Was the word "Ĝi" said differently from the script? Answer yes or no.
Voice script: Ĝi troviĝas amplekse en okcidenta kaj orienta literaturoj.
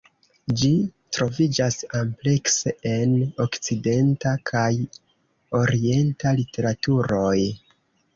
no